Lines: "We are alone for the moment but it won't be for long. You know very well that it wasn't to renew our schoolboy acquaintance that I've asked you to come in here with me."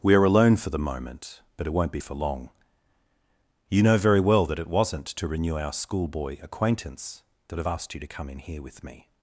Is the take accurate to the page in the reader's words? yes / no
yes